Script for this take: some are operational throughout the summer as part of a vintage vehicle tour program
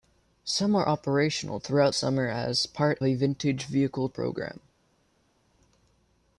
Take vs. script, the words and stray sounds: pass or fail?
fail